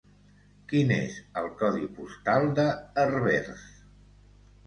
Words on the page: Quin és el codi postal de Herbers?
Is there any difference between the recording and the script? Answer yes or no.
no